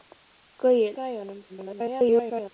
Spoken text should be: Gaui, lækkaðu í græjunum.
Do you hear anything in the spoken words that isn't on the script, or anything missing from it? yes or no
yes